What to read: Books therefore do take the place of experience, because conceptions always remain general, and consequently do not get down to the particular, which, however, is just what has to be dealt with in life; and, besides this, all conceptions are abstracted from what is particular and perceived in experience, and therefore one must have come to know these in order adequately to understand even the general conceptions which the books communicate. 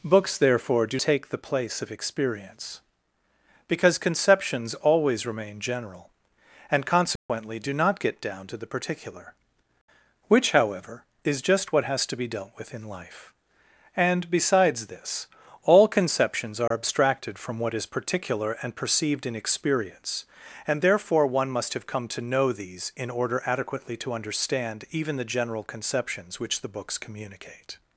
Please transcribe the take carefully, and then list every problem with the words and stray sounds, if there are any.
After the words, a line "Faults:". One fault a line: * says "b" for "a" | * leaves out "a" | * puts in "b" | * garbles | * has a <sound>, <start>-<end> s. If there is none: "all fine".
Books therefore do take the place of experience, because conceptions always remain general, and consequently do not get down to the particular, which, however, is just what has to be dealt with in life; and, besides this, all conceptions are abstracted from what is particular and perceived in experience, and therefore one must have come to know these in order adequately to understand even the general conceptions which the books communicate.
Faults:
* has a dropout, 7.2-7.3 s
* has a dropout, 16.7-16.7 s